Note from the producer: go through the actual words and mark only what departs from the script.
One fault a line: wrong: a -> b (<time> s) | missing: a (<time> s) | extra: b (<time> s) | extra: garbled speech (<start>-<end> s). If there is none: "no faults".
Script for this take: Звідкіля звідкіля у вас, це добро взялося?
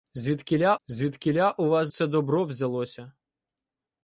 no faults